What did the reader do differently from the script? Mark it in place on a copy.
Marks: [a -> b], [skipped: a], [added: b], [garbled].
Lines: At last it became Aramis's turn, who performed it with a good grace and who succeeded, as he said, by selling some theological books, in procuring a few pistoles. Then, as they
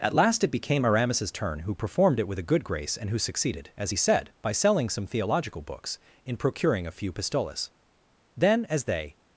At last it became Aramis's turn, who performed it with a good grace and who succeeded, as he said, by selling some theological books, in procuring a few pistoles. Then, as they